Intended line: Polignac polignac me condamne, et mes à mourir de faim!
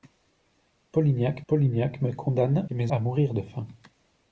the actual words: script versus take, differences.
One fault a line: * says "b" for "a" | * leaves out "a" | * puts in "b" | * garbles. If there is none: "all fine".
all fine